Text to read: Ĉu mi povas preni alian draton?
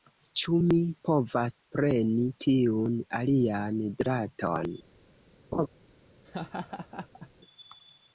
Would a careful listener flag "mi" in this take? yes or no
no